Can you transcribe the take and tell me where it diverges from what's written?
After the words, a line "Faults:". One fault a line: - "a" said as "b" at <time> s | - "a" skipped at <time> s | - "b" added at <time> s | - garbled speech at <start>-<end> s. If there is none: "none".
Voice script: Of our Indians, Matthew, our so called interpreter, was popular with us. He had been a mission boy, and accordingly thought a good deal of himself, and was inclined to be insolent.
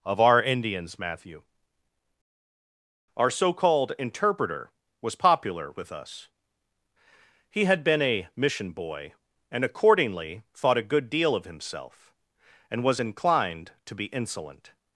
Of our Indians, Matthew, our so called interpreter, was popular with us. He had been a mission boy, and accordingly thought a good deal of himself, and was inclined to be insolent.
Faults:
none